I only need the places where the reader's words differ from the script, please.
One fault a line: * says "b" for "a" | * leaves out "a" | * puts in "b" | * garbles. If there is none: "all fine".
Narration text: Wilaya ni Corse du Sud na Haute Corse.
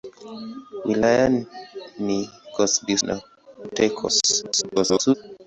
* leaves out "Sud"
* garbles